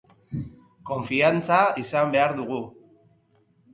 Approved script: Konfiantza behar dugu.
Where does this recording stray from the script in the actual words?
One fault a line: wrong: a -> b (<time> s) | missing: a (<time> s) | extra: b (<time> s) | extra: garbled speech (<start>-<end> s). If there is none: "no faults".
extra: izan (1.8 s)